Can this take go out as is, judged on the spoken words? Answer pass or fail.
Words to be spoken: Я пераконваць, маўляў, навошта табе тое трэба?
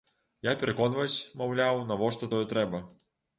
fail